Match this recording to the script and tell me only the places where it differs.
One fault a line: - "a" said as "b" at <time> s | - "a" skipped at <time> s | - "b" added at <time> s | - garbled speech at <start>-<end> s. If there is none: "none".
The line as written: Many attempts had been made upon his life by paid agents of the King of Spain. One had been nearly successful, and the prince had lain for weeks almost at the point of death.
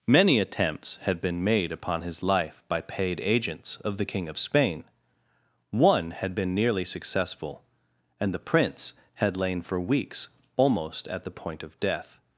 none